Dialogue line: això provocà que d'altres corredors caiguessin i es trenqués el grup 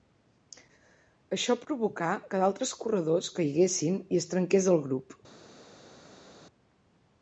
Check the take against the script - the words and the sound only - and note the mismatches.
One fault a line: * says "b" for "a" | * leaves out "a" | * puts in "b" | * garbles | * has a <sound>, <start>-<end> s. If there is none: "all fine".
all fine